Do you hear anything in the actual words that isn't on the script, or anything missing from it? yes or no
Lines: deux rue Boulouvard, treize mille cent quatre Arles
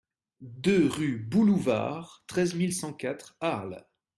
no